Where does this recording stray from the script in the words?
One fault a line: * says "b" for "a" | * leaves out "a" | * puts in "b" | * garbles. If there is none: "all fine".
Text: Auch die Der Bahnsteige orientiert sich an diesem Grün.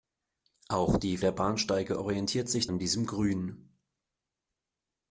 all fine